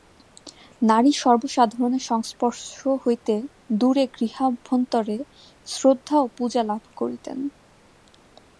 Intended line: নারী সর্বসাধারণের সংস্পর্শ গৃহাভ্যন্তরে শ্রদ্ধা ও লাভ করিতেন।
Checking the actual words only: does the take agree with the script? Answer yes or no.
no